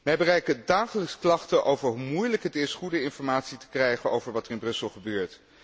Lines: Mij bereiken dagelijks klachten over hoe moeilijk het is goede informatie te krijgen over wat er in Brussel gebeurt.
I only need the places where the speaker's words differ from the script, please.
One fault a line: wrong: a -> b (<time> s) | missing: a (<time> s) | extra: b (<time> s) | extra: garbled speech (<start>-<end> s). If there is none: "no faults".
no faults